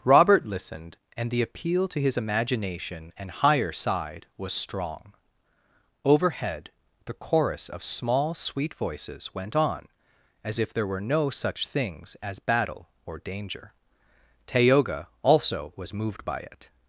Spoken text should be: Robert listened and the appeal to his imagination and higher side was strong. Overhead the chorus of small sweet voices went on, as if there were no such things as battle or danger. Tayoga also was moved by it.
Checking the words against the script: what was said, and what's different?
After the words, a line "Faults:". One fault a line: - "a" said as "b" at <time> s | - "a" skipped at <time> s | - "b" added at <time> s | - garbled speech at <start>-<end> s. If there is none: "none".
Robert listened and the appeal to his imagination and higher side was strong. Overhead the chorus of small sweet voices went on, as if there were no such things as battle or danger. Tayoga also was moved by it.
Faults:
none